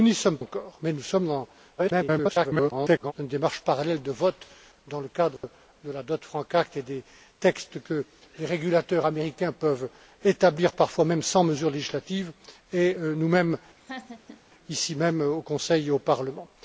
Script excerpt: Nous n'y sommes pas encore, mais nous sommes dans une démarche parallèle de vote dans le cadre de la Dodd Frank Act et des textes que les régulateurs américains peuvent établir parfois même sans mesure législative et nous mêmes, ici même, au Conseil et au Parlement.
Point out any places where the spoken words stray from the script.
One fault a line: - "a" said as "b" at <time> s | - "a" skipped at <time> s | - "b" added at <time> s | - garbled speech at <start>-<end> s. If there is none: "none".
- "pas" skipped at 0.4 s
- garbled speech at 1.8-3.1 s